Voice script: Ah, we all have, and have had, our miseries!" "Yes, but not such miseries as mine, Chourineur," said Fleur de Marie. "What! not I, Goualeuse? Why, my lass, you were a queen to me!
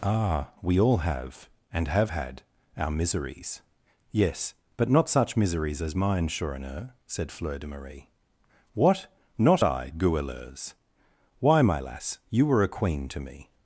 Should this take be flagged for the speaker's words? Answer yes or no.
no